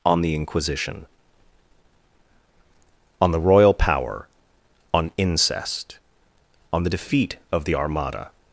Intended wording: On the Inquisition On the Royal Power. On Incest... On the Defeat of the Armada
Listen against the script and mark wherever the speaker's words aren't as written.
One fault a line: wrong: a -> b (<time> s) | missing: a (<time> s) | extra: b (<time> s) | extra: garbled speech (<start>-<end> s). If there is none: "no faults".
no faults